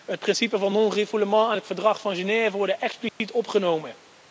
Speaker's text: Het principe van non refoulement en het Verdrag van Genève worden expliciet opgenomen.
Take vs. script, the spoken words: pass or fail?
pass